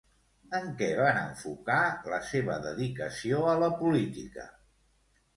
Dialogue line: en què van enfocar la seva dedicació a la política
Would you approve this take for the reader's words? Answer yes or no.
yes